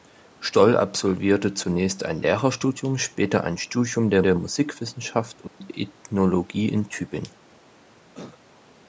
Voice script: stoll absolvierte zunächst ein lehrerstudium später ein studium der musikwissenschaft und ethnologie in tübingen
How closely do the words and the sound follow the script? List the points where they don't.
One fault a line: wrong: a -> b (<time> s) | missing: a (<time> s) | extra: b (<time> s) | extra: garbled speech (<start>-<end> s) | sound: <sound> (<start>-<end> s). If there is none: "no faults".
extra: der (4.2 s)
sound: dropout (5.5-5.6 s)
sound: cough (8.1-8.4 s)